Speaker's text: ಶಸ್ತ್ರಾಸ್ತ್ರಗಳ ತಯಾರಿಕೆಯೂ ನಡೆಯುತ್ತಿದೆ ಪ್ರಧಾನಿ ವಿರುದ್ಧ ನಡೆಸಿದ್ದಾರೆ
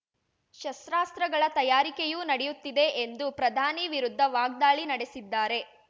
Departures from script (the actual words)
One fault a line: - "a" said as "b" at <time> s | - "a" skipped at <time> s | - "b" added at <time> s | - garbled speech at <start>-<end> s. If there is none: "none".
- "ಎಂದು" added at 3.0 s
- "ವಾಗ್ದಾಳಿ" added at 4.3 s